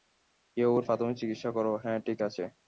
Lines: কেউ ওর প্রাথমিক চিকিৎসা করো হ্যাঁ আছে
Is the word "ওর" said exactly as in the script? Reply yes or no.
yes